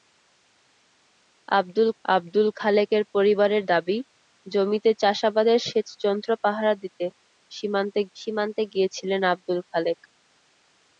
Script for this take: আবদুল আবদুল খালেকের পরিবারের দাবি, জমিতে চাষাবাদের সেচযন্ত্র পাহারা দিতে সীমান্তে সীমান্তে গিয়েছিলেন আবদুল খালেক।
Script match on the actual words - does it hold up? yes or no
yes